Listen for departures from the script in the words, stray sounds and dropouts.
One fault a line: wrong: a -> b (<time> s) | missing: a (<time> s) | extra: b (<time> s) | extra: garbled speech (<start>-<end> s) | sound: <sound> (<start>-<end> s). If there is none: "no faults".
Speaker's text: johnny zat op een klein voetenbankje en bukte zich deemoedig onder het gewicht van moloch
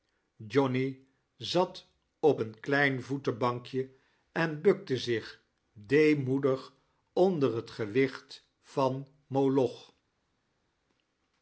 no faults